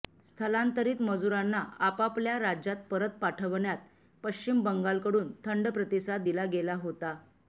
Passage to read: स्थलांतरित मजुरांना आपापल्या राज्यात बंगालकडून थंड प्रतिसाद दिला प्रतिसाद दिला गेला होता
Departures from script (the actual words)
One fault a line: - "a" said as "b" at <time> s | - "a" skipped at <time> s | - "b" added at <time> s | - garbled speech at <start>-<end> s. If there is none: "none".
- "परत पाठवण्यात पश्चिम" added at 2.9 s
- "प्रतिसाद दिला" skipped at 6.4 s